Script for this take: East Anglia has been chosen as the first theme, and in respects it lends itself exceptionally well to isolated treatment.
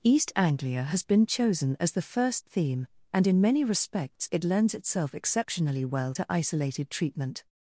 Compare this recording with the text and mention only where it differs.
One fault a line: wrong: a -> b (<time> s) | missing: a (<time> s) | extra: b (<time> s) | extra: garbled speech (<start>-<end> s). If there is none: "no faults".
extra: many (3.4 s)